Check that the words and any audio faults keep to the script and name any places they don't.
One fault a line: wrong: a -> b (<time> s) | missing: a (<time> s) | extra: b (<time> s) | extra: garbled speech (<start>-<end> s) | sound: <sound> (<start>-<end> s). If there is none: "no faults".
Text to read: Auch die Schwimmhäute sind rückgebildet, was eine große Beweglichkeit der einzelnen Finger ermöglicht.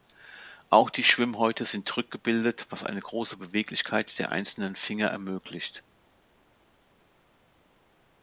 no faults